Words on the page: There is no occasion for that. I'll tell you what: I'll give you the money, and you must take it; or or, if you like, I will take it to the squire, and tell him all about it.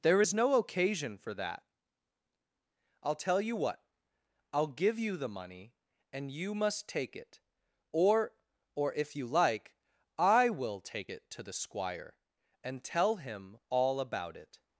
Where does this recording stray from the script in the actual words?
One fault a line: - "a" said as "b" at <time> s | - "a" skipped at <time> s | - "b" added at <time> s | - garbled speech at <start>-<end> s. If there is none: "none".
none